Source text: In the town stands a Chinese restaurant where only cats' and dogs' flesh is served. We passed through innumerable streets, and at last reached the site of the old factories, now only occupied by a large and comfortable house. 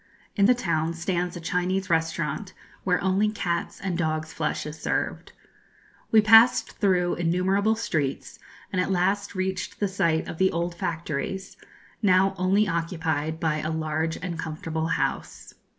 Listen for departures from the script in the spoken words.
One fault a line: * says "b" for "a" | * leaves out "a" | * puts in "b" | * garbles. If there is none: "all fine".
all fine